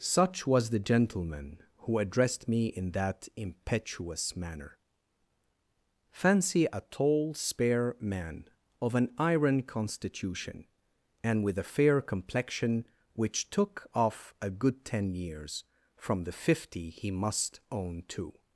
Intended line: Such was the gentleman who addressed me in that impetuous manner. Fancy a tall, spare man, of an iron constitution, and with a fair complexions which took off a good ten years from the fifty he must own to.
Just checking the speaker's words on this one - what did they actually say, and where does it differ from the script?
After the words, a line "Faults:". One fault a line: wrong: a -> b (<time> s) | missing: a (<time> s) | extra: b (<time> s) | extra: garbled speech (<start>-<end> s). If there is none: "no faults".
Such was the gentleman who addressed me in that impetuous manner. Fancy a tall, spare man, of an iron constitution, and with a fair complexion which took off a good ten years from the fifty he must own to.
Faults:
wrong: complexions -> complexion (12.0 s)